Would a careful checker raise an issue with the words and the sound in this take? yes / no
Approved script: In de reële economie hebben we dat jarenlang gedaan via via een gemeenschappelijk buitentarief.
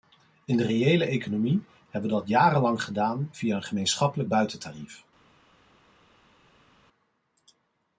yes